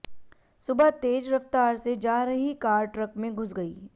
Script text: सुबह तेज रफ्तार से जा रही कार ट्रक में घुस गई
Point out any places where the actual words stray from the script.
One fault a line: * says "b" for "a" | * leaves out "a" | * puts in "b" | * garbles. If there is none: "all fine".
all fine